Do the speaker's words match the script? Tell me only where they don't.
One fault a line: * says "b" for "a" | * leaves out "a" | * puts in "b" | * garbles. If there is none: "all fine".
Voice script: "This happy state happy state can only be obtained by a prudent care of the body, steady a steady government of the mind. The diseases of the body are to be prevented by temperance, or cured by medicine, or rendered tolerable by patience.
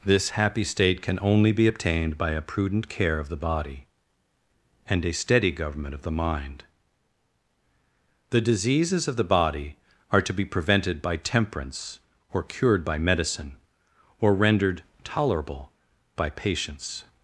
* leaves out "happy state"
* says "and" for "steady"